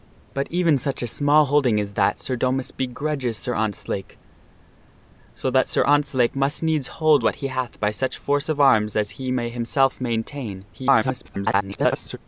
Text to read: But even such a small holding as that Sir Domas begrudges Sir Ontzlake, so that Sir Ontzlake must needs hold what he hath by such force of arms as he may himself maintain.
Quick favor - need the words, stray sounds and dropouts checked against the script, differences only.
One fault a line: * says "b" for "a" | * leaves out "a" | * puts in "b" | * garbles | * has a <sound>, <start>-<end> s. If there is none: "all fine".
* garbles